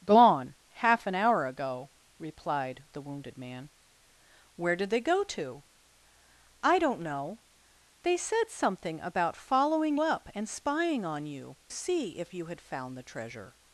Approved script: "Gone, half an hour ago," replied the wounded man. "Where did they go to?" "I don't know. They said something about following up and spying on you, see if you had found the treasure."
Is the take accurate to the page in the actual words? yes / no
yes